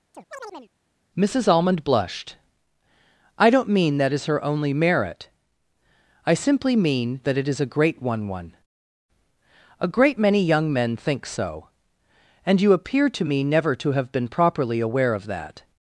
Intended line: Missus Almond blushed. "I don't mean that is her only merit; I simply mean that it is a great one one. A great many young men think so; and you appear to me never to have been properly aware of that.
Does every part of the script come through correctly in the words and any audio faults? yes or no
no